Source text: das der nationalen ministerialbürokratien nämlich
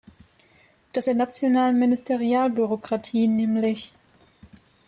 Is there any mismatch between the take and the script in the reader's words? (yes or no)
no